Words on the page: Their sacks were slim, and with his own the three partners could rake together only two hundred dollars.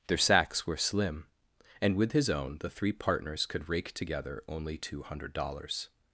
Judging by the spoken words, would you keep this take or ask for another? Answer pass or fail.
pass